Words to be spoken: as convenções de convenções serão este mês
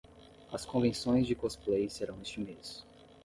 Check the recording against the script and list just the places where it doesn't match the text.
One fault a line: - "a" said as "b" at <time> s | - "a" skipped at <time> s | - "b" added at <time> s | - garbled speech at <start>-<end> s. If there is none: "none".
- "convenções" said as "cosplay" at 1.4 s